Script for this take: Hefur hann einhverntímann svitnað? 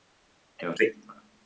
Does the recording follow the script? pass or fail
fail